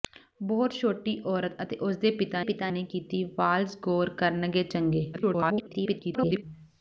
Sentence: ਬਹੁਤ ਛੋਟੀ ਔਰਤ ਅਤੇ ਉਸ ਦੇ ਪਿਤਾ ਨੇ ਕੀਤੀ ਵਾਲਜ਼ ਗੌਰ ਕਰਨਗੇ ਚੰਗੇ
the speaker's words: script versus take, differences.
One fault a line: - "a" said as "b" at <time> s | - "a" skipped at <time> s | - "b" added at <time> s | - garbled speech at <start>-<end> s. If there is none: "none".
- "ਪਿਤਾ" added at 2.4 s
- garbled speech at 5.1-6.4 s